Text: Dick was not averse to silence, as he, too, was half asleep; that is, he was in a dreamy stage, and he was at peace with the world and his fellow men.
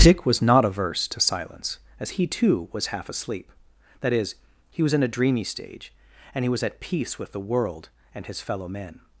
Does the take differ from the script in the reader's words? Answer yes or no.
no